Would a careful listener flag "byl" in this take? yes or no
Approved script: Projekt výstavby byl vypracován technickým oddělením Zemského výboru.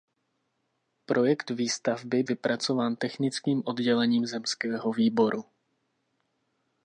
yes